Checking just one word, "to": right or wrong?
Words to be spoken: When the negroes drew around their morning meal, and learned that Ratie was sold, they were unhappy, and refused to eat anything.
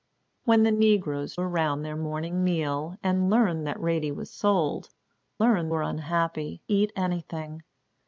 wrong